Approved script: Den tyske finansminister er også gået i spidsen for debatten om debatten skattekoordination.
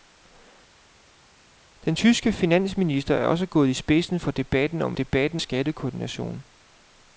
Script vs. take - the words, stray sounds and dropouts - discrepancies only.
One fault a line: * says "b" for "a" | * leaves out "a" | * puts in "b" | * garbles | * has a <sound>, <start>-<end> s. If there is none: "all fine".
all fine